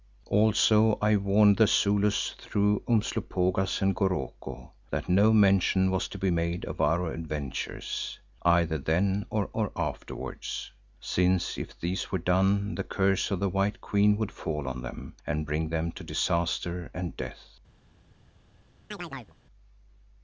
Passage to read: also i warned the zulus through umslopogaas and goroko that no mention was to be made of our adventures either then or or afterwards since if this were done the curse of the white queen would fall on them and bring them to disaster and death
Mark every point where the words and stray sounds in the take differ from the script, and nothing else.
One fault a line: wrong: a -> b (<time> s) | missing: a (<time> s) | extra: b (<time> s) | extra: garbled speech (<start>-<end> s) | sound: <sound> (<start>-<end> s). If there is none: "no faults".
sound: chirp (18.9-19.4 s)